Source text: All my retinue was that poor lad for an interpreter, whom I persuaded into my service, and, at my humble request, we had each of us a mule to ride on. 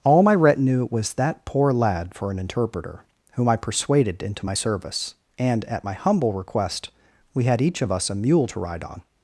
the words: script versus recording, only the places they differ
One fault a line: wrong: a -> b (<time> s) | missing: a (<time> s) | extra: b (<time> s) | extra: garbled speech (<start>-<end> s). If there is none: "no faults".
no faults